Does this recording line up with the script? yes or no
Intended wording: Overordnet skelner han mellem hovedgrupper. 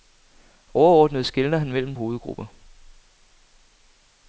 yes